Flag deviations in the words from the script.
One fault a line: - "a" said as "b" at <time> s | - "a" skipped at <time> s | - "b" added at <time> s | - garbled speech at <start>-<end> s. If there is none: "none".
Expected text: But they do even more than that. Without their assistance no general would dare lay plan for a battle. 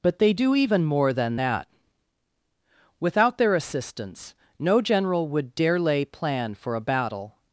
none